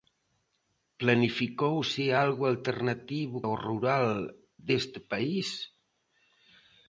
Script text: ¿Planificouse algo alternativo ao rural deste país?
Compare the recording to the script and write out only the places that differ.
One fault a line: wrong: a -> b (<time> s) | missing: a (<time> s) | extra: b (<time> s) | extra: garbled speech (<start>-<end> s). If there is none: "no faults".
no faults